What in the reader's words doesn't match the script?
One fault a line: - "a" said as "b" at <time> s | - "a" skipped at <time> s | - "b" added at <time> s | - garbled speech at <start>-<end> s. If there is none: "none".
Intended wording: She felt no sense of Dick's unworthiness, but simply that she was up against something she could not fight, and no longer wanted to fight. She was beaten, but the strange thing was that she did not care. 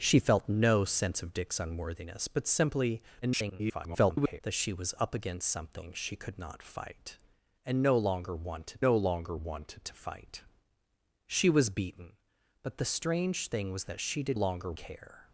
- garbled speech at 3.2-4.4 s
- "no longer wanted" added at 8.8 s
- "not" said as "longer" at 14.3 s